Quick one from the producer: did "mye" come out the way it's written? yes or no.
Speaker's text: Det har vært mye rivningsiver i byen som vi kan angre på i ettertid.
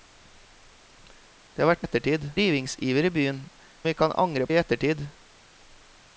no